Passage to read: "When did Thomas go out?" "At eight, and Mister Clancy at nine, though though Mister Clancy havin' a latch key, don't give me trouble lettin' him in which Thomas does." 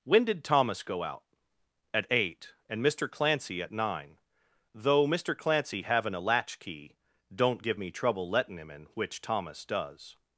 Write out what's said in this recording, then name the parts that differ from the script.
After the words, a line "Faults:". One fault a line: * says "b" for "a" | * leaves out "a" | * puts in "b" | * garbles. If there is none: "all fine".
"When did Thomas go out?" "At eight, and Mister Clancy at nine, though Mister Clancy havin' a latch key, don't give me trouble lettin' him in which Thomas does."
Faults:
* leaves out "though"